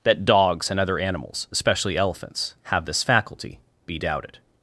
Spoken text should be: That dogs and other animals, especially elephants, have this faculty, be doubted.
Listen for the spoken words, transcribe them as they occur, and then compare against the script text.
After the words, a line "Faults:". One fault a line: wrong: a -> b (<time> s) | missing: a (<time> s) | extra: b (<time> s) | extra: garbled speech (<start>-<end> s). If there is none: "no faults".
That dogs and other animals, especially elephants, have this faculty, be doubted.
Faults:
no faults